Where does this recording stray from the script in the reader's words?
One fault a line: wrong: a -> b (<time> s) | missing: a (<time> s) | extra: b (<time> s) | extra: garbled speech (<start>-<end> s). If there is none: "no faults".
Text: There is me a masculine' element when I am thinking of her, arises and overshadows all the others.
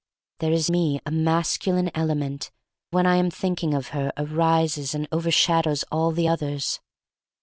no faults